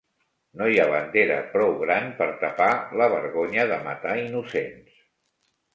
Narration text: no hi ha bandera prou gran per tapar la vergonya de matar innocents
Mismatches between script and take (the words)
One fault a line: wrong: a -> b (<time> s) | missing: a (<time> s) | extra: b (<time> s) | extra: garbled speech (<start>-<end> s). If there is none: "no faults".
no faults